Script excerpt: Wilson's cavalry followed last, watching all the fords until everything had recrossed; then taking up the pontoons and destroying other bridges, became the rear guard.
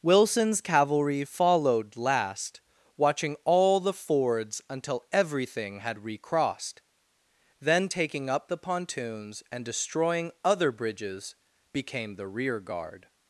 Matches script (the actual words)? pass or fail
pass